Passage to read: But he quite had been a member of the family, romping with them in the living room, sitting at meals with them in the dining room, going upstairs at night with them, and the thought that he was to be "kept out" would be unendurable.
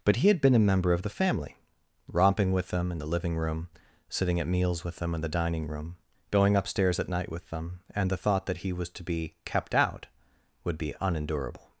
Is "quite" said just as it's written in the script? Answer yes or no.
no